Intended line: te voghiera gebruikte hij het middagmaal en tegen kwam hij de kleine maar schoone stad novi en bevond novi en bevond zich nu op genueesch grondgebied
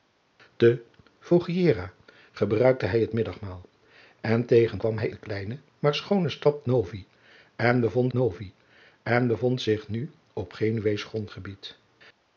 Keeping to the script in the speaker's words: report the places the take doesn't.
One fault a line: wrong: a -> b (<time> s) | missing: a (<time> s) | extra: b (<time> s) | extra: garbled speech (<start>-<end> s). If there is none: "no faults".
no faults